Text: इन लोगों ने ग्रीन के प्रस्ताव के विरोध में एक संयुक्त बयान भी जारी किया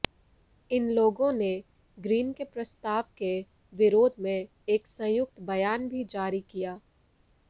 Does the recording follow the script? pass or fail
pass